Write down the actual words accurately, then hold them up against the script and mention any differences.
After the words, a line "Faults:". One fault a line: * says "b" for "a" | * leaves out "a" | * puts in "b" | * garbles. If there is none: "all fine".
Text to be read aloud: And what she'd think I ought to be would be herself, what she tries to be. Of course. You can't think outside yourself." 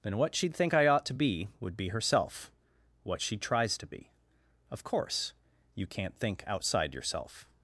Then what she'd think I ought to be would be herself, what she tries to be. Of course. You can't think outside yourself."
Faults:
* says "Then" for "And"